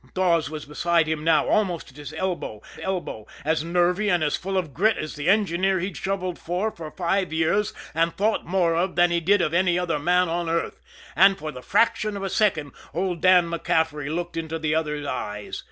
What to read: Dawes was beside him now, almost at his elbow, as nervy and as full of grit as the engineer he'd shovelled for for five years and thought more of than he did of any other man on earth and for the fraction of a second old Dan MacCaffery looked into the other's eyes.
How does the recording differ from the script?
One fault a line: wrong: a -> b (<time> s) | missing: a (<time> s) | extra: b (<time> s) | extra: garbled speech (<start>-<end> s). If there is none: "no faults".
extra: elbow (2.8 s)